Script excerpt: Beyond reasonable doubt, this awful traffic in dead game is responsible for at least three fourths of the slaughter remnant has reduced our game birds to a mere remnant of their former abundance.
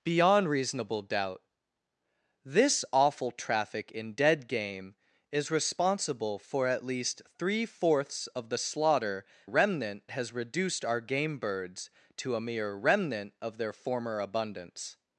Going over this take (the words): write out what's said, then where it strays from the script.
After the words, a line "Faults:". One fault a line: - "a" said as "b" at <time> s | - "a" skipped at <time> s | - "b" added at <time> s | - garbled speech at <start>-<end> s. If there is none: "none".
Beyond reasonable doubt, this awful traffic in dead game is responsible for at least three fourths of the slaughter remnant has reduced our game birds to a mere remnant of their former abundance.
Faults:
none